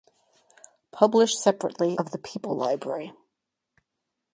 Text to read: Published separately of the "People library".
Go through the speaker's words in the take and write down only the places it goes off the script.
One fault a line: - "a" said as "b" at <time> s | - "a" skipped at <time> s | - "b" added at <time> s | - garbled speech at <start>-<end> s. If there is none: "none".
none